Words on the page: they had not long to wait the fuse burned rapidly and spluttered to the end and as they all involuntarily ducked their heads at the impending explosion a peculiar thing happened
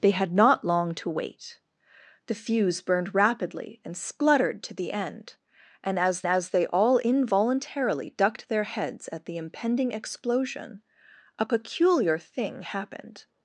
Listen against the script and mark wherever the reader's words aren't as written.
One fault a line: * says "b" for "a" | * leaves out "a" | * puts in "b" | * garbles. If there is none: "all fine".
* puts in "as"